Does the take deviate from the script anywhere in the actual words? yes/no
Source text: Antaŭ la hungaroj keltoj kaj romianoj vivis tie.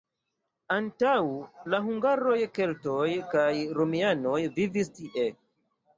no